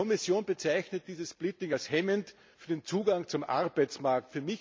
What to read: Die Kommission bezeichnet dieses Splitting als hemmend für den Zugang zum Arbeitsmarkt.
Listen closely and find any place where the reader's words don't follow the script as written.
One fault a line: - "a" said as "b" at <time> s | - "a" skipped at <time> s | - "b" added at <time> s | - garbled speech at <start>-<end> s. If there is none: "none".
none